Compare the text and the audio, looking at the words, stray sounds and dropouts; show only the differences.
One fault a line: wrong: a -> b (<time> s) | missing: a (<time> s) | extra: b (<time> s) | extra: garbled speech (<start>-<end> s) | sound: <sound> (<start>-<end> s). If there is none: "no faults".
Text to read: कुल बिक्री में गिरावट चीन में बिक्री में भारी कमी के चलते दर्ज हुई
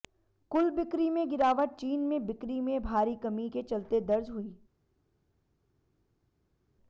no faults